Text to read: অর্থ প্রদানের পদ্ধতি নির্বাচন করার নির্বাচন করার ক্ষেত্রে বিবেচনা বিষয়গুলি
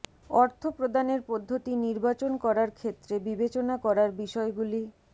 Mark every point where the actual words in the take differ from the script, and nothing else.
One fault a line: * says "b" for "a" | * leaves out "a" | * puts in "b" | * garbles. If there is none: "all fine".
* leaves out "নির্বাচন করার"
* puts in "করার"